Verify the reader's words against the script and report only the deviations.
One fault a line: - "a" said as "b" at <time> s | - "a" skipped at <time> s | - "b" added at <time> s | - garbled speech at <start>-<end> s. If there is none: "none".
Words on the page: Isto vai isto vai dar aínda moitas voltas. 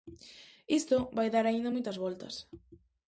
- "isto vai" skipped at 1.3 s